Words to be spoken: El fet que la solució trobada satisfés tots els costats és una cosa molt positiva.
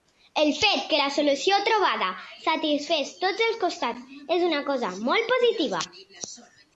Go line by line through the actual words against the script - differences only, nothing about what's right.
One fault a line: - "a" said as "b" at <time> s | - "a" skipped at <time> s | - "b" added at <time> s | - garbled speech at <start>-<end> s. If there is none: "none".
none